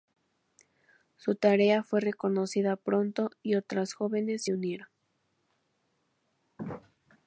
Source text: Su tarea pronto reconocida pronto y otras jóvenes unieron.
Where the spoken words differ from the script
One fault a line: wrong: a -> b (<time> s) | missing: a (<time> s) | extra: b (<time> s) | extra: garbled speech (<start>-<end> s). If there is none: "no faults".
wrong: pronto -> fue (1.8 s)
extra: se (4.4 s)